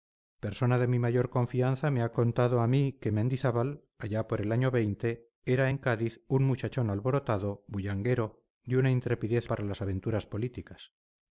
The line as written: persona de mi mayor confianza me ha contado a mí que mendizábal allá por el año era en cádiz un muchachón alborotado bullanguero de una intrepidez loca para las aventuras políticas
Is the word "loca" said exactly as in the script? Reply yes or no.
no